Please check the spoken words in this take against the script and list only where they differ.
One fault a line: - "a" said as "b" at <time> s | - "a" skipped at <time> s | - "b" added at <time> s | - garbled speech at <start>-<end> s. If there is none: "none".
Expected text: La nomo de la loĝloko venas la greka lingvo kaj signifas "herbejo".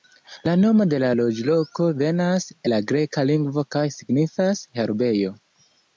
none